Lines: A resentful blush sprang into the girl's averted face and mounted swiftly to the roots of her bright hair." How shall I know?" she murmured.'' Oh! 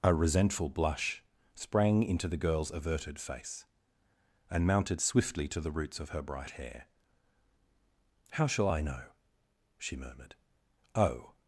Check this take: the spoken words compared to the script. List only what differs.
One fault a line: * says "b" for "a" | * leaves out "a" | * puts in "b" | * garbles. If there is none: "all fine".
all fine